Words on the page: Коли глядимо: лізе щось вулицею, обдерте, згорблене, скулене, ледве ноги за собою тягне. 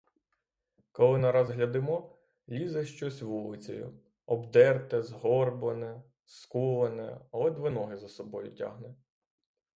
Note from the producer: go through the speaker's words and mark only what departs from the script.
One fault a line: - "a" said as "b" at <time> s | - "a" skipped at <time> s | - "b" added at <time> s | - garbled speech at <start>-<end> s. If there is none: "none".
- "нараз" added at 1.1 s